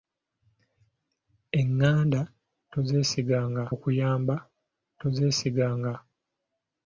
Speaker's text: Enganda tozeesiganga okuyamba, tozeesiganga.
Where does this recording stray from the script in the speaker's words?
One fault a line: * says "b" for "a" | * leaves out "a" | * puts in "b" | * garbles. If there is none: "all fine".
all fine